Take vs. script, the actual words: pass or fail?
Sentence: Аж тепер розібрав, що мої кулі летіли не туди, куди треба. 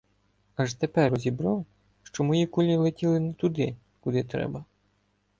pass